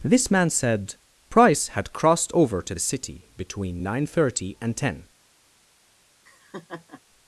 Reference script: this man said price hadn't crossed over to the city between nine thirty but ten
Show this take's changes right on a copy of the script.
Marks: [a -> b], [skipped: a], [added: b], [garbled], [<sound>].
this man said price [hadn't -> had] crossed over to the city between nine thirty [but -> and] ten [laugh]